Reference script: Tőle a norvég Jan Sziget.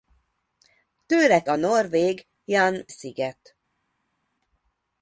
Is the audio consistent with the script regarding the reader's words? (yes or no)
yes